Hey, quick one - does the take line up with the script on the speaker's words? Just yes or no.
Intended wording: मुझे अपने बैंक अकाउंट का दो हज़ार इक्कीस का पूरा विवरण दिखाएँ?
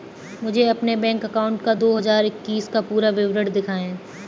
yes